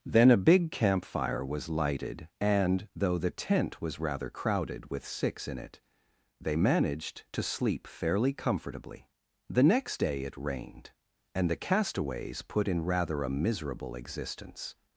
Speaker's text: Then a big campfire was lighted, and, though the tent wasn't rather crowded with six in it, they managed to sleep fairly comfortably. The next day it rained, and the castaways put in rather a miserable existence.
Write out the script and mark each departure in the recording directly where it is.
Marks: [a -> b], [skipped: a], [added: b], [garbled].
Then a big campfire was lighted, and, though the tent [wasn't -> was] rather crowded with six in it, they managed to sleep fairly comfortably. The next day it rained, and the castaways put in rather a miserable existence.